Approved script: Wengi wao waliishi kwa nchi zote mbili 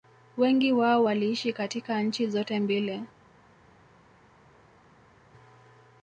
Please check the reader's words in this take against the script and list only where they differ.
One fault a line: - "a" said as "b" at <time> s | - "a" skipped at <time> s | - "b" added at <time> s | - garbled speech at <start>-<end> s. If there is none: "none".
- "kwa" said as "katika" at 1.5 s